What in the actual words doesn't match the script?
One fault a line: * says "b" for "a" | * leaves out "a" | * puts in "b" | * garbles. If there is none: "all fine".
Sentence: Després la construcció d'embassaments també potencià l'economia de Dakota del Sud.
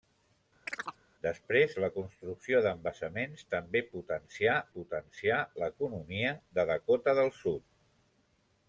* puts in "potencià"